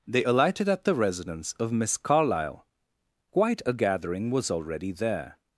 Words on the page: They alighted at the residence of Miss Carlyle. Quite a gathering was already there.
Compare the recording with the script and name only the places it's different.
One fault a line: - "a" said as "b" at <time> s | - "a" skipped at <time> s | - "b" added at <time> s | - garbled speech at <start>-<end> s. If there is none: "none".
none